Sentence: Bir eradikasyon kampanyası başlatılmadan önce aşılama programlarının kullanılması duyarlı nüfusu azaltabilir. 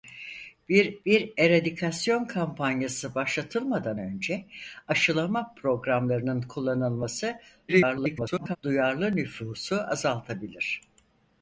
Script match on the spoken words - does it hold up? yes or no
no